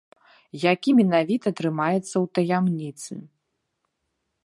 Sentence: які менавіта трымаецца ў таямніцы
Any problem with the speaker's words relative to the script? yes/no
no